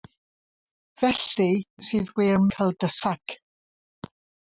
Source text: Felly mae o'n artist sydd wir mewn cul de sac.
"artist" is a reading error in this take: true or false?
true